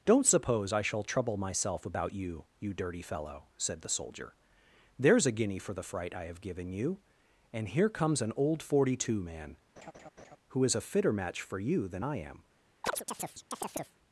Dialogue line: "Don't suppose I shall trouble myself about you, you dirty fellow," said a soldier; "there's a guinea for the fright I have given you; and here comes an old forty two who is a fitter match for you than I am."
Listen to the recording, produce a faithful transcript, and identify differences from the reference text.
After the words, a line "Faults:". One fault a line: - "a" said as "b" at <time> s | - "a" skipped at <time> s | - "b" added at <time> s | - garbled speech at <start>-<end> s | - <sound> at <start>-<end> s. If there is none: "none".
"Don't suppose I shall trouble myself about you, you dirty fellow," said the soldier; "there's a guinea for the fright I have given you; and here comes an old forty two man, who is a fitter match for you than I am."
Faults:
- "a" said as "the" at 3.8 s
- "man" added at 9.2 s
- laugh at 9.8-10.4 s
- chirp at 12.8-14.0 s